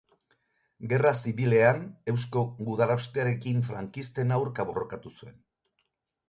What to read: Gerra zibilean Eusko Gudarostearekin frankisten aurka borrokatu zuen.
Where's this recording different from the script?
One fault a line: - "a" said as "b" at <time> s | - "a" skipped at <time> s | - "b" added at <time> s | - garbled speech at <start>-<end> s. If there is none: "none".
none